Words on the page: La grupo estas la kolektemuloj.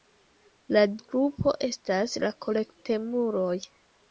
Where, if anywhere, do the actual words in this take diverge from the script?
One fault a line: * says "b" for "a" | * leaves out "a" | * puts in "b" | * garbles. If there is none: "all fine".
all fine